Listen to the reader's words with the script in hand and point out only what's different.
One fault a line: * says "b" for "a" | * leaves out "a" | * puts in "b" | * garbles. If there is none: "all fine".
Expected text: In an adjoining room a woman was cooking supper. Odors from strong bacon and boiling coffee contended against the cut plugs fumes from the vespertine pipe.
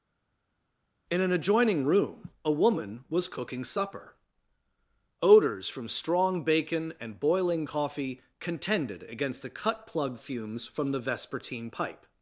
* says "plug" for "plugs"